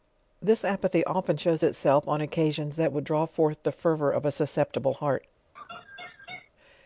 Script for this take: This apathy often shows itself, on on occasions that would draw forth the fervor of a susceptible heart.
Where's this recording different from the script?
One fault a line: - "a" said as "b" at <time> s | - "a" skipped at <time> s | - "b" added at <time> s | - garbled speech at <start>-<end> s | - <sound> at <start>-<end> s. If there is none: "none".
- "on" skipped at 2.2 s
- laugh at 5.6-6.5 s